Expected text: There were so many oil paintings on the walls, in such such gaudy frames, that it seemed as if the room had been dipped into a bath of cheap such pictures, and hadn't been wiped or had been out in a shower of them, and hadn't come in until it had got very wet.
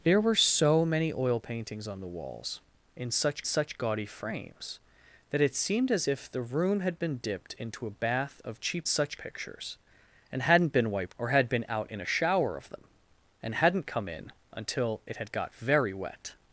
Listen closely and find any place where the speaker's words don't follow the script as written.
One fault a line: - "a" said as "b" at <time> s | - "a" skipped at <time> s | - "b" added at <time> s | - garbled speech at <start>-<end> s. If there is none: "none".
none